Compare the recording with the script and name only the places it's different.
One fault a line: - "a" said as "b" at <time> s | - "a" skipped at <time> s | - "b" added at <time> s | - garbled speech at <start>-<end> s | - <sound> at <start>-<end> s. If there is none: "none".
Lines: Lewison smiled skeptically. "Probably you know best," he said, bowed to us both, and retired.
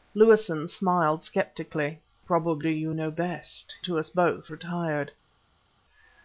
- "he said bowed" skipped at 3.8 s
- "and" skipped at 4.5 s